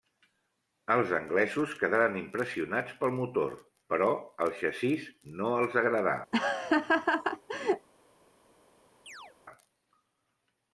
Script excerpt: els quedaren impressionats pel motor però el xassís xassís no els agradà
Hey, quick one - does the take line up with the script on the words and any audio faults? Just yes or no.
no